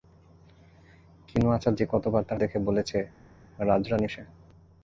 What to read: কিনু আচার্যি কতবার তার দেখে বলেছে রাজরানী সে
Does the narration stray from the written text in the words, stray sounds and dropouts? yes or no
no